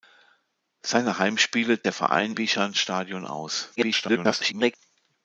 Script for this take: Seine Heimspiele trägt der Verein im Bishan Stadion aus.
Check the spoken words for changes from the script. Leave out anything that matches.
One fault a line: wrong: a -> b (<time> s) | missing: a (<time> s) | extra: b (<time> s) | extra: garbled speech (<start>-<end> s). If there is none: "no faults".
missing: trägt (1.8 s)
missing: im (2.4 s)
extra: garbled speech (3.8-4.8 s)